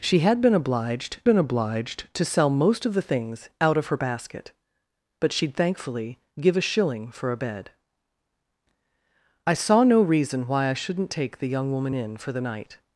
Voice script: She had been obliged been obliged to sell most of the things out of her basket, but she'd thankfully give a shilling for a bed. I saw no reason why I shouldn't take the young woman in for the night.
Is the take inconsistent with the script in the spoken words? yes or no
no